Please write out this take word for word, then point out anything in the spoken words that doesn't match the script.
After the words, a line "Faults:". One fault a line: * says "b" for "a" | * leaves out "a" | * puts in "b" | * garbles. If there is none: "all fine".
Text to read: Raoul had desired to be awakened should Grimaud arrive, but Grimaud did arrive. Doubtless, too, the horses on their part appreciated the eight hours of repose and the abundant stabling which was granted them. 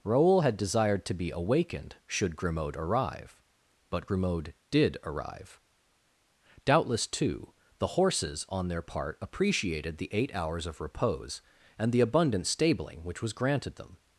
Raoul had desired to be awakened should Grimaud arrive, but Grimaud did arrive. Doubtless, too, the horses on their part appreciated the eight hours of repose and the abundant stabling which was granted them.
Faults:
all fine